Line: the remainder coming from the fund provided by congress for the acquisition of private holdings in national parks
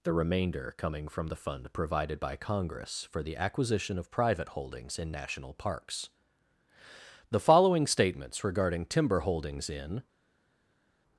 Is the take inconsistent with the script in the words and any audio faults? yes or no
yes